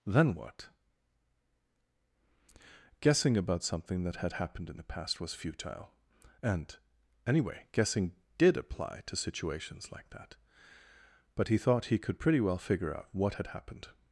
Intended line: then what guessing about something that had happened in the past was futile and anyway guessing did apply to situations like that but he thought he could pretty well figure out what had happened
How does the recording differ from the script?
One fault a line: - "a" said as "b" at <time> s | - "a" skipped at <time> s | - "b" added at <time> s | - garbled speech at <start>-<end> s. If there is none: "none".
none